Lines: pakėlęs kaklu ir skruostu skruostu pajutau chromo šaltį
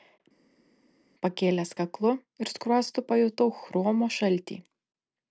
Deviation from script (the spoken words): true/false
true